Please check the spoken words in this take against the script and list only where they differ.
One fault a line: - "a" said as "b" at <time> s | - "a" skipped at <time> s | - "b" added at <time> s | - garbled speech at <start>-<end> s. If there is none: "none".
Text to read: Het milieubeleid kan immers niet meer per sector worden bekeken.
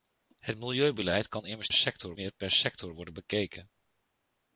- "niet" said as "sector" at 1.7 s